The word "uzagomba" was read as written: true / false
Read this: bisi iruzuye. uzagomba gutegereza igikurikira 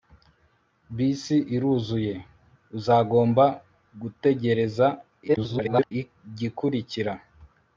true